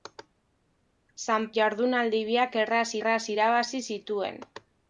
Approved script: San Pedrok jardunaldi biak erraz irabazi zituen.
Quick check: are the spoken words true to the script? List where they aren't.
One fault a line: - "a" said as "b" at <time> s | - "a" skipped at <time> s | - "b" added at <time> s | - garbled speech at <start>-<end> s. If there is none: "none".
- "Pedrok" skipped at 1.4 s
- "erraz" added at 3.0 s